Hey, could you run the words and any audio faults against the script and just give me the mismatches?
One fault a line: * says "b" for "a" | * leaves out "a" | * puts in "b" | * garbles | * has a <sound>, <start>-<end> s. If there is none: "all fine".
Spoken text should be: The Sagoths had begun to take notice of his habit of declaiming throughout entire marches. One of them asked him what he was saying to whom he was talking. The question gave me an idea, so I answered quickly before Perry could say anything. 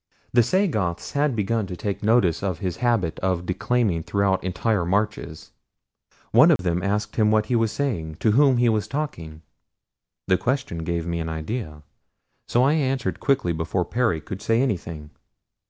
* has a dropout, 6.6-6.6 s